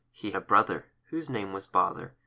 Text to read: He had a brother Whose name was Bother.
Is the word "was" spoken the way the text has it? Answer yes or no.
yes